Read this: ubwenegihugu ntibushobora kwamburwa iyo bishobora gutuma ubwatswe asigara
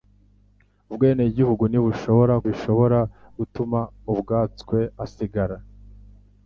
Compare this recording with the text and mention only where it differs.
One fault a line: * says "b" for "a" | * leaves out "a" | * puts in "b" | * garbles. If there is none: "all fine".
* leaves out "kwamburwa iyo"